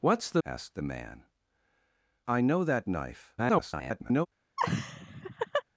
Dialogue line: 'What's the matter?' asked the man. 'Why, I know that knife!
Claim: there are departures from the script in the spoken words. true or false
true